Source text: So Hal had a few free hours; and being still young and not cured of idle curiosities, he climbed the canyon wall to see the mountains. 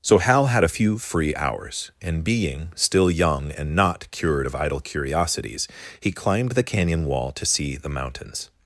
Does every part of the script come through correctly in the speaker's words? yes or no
yes